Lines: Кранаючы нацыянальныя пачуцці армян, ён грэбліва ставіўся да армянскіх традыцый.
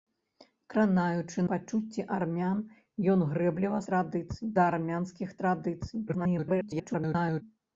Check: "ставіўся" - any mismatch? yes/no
yes